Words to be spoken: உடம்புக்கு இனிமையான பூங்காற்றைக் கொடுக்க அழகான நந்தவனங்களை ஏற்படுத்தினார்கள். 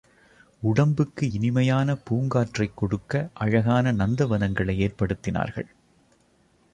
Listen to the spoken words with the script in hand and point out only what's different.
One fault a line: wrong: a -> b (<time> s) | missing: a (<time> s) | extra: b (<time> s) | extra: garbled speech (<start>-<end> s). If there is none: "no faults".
no faults